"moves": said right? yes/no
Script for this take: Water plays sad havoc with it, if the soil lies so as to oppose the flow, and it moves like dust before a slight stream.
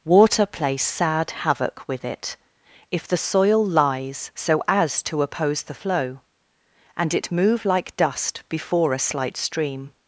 no